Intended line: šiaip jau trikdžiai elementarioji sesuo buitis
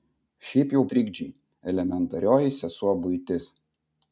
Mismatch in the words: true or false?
false